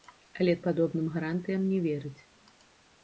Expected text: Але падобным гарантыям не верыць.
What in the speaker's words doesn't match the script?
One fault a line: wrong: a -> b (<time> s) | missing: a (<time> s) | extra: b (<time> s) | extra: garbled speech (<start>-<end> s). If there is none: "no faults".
no faults